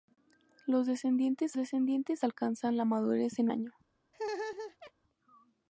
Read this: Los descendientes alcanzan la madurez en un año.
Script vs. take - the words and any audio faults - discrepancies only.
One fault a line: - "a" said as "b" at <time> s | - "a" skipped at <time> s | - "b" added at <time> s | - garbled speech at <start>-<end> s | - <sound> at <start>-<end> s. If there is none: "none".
- "descendientes" added at 1.6 s
- "un" skipped at 3.5 s
- laugh at 4.1-4.9 s